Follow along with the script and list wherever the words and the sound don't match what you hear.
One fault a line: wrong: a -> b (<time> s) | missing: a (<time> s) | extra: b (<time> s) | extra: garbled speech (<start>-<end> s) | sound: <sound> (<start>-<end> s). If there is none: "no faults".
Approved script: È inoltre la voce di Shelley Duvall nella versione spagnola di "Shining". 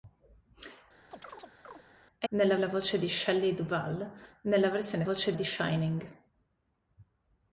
sound: chirp (1.1-1.8 s)
wrong: inoltre -> nella (2.3 s)
wrong: spagnola -> voce (5.0 s)